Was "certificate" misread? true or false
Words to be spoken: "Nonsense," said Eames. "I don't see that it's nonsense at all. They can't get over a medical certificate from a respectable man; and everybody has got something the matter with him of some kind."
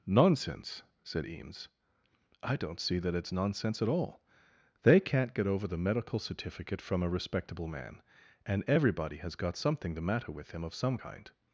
false